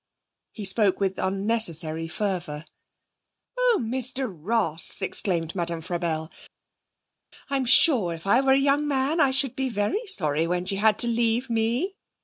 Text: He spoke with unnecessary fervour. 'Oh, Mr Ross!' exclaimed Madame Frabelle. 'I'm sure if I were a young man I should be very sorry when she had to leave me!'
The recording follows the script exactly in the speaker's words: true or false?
true